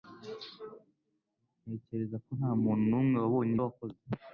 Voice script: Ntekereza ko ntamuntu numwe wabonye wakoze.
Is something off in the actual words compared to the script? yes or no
no